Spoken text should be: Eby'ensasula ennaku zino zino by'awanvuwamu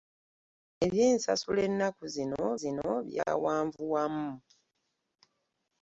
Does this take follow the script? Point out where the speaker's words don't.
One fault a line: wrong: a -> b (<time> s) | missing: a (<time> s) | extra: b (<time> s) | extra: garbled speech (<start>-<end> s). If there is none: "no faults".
no faults